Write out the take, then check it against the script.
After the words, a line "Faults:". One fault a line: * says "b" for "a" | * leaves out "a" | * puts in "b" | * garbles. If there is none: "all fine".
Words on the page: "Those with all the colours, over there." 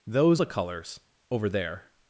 "Those the colours, over there."
Faults:
* leaves out "with all"